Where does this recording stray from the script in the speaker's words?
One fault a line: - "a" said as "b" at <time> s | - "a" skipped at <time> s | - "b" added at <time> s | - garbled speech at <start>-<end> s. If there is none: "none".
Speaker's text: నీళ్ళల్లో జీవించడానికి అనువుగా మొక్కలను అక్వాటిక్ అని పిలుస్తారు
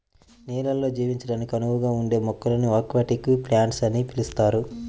- "ఉండే" added at 2.0 s
- "ప్లాంట్స్" added at 3.5 s